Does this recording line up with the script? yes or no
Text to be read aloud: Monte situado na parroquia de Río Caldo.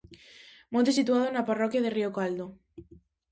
yes